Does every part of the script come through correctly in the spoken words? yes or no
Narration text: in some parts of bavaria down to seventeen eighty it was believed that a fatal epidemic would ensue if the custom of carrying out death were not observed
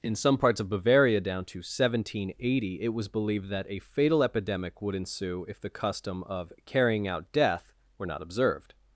yes